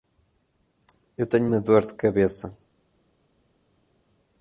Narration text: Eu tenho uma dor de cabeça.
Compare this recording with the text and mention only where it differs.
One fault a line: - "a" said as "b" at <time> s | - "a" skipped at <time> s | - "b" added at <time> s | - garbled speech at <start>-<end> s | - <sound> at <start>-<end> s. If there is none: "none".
none